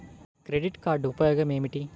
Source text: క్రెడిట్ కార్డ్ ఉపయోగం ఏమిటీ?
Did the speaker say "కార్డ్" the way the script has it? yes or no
yes